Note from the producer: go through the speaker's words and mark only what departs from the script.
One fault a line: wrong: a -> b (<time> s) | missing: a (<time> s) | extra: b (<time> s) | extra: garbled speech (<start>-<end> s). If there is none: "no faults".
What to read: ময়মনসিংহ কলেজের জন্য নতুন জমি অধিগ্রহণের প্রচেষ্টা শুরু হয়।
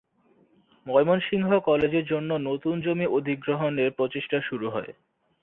no faults